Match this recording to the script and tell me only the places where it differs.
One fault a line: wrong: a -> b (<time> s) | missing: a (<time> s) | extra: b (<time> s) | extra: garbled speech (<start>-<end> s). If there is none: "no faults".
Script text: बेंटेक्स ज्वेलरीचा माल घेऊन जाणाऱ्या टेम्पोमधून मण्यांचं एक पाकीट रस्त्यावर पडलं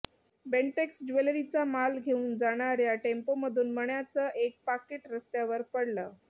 no faults